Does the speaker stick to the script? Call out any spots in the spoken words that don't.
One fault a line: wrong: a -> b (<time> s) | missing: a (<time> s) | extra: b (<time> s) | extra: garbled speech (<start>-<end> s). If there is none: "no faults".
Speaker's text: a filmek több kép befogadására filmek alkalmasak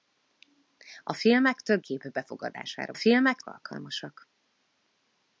no faults